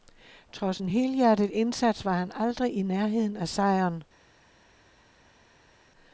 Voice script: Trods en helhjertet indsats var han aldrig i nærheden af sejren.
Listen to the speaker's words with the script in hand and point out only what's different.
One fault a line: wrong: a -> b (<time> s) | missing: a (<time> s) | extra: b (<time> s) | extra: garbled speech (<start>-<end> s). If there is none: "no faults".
no faults